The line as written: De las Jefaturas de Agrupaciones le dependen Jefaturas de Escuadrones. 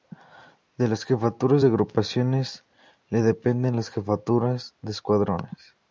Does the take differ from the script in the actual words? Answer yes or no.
yes